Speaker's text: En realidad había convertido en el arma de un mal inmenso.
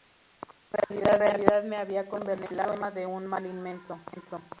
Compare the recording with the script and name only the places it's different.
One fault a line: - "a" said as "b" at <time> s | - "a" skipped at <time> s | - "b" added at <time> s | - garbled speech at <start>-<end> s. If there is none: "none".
- "me" added at 1.6 s